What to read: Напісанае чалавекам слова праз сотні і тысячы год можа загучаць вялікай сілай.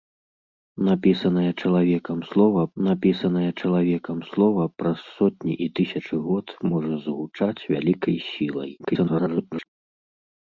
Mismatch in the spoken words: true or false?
true